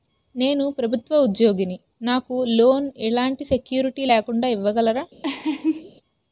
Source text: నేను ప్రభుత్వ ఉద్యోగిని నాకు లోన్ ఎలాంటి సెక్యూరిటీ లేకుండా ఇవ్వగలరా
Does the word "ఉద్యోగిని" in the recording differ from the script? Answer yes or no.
no